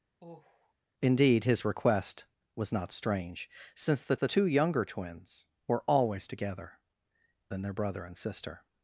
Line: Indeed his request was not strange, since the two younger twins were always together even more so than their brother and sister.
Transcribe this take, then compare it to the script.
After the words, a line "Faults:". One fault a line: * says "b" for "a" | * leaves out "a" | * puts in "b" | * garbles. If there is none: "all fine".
Indeed his request was not strange, since the the two younger twins were always together than their brother and sister.
Faults:
* puts in "the"
* leaves out "even more so"